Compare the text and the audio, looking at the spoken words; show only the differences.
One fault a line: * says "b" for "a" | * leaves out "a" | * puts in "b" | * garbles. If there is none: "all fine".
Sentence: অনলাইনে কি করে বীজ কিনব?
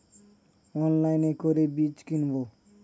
* leaves out "কি"